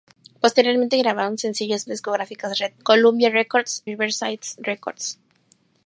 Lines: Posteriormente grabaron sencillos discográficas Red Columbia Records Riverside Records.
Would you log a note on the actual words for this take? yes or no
no